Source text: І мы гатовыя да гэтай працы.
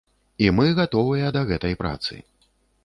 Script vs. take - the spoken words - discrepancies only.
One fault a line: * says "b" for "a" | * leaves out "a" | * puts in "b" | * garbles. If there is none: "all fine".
all fine